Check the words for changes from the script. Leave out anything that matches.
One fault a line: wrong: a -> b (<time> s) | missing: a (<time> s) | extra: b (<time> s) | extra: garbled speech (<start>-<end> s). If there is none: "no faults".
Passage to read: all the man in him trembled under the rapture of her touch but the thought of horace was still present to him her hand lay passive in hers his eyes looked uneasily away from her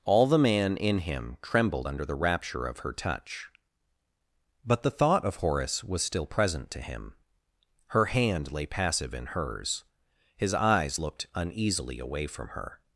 no faults